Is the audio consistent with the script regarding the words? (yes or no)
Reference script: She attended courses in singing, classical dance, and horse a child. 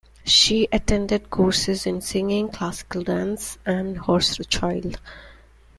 yes